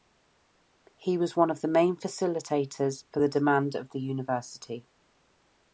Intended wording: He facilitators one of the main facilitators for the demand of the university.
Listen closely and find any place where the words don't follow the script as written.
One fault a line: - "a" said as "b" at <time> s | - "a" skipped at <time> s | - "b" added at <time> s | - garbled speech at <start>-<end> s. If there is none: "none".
- "facilitators" said as "was" at 1.1 s